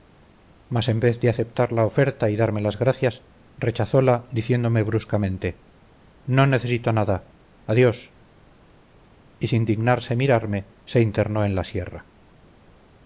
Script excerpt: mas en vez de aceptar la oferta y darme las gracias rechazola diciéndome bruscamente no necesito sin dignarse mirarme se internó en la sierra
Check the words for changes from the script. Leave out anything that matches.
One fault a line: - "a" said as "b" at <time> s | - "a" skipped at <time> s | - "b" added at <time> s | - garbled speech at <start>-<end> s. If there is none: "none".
- "nada adiós y" added at 6.9 s